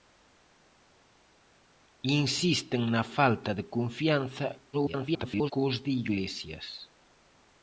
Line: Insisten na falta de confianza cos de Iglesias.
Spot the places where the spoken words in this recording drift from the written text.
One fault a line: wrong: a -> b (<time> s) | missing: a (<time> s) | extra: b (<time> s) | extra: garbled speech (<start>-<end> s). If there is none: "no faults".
extra: garbled speech (4.7-5.5 s)